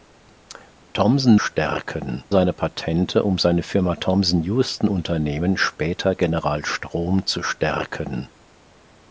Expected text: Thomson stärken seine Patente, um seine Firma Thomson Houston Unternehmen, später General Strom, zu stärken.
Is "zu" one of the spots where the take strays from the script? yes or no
no